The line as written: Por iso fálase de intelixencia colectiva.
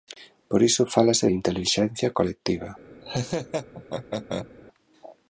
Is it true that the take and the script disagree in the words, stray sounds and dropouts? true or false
true